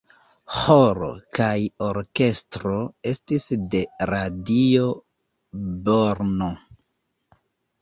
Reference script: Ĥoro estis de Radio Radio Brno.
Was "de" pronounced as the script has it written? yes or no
yes